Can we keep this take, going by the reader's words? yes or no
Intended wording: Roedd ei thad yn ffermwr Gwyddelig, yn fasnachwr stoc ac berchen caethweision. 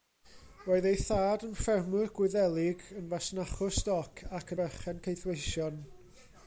yes